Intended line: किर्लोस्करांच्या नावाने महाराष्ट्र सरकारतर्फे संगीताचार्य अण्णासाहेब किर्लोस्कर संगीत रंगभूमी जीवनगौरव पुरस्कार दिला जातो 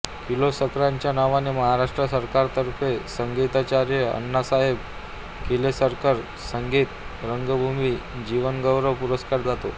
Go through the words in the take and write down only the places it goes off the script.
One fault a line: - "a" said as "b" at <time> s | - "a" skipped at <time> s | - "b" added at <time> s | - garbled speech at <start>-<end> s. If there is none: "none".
- "दिला" skipped at 9.4 s